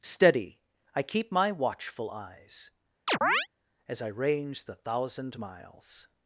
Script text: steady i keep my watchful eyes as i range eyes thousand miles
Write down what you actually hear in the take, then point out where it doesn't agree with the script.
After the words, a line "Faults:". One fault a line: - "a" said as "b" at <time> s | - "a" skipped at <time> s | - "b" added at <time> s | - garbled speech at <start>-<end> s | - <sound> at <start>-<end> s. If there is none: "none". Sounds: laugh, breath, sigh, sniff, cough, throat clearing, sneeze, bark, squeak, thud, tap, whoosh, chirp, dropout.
steady i keep my watchful eyes as i range the thousand miles
Faults:
- chirp at 3.1-3.5 s
- "eyes" said as "the" at 4.6 s